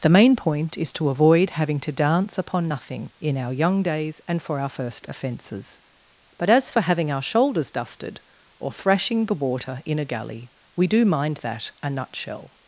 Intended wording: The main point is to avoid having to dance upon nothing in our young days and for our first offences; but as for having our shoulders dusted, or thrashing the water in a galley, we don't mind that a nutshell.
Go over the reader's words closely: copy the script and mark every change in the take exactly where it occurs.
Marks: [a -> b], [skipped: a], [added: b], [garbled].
The main point is to avoid having to dance upon nothing in our young days and for our first offences; but as for having our shoulders dusted, or thrashing the water in a galley, we [don't -> do] mind that a nutshell.